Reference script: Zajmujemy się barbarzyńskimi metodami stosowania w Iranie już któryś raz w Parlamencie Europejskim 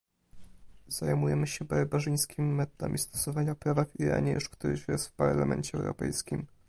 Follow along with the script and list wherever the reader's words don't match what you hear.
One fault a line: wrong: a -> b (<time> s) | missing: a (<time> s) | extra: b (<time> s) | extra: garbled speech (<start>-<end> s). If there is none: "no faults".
extra: prawa (3.5 s)